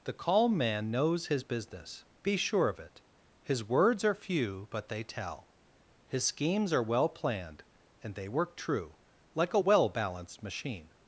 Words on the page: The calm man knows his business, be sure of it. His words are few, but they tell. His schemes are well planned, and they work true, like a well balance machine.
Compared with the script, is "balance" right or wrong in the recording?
wrong